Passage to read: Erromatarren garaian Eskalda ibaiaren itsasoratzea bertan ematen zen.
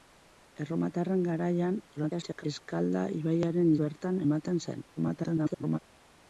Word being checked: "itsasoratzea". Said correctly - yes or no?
no